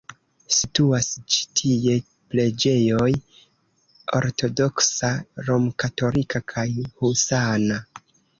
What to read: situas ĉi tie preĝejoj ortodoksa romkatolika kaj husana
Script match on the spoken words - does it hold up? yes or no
yes